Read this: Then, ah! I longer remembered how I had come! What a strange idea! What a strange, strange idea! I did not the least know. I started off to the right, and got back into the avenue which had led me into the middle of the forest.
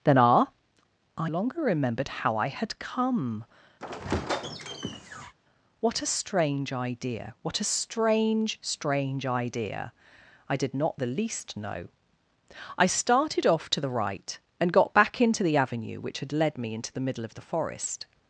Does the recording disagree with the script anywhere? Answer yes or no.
no